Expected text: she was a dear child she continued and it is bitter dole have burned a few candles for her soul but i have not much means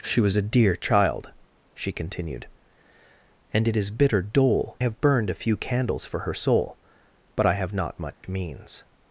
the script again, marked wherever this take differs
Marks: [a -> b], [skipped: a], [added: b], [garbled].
she was a dear child she continued and it is bitter dole have burned a few candles for her soul but i have not much means